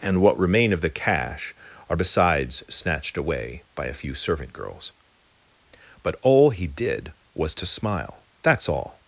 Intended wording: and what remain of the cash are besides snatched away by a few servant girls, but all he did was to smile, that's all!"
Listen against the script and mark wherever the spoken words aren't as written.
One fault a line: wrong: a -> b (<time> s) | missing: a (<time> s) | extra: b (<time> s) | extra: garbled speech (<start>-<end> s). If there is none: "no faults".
no faults